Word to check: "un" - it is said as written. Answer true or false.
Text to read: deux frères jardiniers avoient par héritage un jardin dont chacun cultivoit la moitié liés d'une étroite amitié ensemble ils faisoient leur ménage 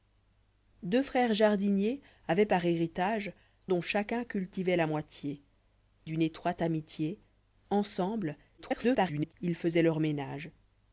false